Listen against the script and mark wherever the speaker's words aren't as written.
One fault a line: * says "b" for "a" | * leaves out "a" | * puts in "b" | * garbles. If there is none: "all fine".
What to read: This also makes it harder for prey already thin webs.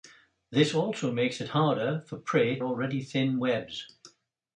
all fine